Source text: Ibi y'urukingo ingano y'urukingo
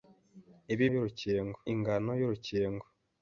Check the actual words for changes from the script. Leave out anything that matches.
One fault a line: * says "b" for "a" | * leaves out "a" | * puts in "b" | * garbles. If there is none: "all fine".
all fine